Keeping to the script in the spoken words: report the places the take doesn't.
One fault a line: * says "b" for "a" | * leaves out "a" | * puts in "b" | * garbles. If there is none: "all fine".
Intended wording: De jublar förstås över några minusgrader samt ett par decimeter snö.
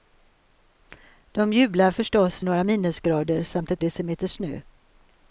* leaves out "över"
* leaves out "par"